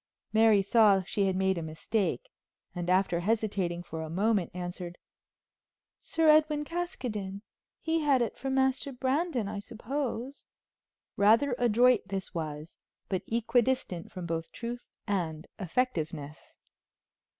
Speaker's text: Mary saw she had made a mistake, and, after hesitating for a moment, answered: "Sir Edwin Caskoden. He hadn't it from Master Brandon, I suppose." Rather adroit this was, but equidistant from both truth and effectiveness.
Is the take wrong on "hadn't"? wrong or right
wrong